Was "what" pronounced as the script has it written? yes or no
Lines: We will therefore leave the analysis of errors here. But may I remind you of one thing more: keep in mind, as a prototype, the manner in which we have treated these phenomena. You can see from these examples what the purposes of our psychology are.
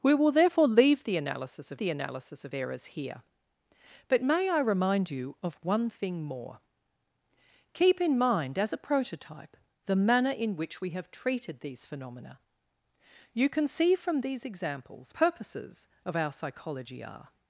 no